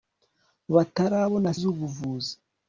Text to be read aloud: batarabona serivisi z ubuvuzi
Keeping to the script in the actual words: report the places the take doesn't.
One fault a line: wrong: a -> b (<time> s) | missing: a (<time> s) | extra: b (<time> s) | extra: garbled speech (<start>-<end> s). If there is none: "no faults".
missing: serivisi (1.5 s)